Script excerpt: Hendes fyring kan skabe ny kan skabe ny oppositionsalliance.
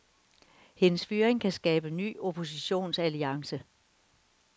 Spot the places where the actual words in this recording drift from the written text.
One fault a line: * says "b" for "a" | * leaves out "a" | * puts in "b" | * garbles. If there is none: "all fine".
* leaves out "kan skabe ny"